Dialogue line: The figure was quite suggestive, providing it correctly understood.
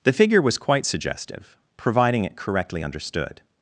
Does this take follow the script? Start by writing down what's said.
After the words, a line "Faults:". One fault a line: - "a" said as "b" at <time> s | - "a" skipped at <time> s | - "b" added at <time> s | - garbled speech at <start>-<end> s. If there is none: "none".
The figure was quite suggestive, providing it correctly understood.
Faults:
none